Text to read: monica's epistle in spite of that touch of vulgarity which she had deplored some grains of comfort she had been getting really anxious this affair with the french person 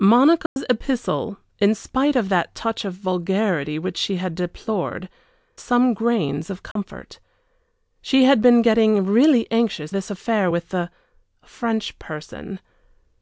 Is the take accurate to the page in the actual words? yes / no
yes